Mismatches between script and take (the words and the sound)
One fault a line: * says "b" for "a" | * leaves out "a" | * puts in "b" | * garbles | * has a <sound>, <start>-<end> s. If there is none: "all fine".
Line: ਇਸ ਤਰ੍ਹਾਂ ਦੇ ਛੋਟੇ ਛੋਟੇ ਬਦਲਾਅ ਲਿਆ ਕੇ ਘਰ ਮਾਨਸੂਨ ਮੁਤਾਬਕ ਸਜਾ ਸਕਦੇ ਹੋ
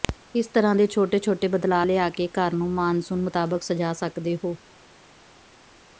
* puts in "ਨੂੰ"